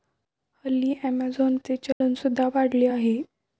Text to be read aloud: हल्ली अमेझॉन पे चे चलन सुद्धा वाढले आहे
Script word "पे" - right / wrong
wrong